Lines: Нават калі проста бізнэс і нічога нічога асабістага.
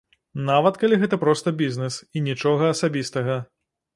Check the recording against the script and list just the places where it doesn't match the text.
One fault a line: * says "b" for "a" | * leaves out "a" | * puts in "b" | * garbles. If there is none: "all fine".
* puts in "гэта"
* leaves out "нічога"